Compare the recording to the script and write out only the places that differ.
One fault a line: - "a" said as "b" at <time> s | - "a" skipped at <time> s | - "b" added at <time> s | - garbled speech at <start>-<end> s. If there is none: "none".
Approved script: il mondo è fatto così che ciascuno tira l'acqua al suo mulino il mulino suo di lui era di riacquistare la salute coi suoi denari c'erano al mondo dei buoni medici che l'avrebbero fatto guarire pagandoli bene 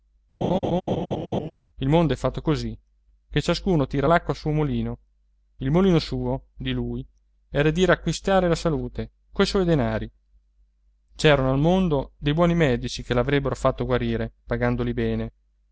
none